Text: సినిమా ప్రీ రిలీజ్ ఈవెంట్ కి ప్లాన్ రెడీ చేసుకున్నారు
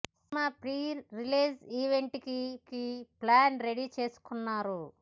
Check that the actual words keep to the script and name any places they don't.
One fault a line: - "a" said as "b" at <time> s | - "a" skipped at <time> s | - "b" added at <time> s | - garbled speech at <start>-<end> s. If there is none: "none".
- "కి" added at 2.7 s